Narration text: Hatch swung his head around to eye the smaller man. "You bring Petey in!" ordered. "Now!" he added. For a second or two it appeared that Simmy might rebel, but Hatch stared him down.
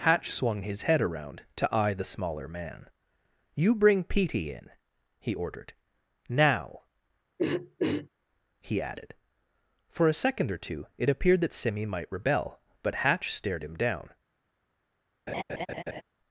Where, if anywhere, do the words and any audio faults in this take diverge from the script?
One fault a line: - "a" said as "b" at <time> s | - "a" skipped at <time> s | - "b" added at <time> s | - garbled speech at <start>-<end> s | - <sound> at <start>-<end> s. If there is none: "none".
- "he" added at 5.2 s
- throat clearing at 7.4-8.1 s
- laugh at 15.3-16.0 s